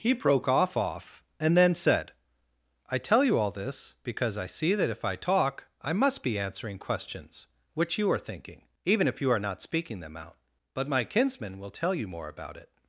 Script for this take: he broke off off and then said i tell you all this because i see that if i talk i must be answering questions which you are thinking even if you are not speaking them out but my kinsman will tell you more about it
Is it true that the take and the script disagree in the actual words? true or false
false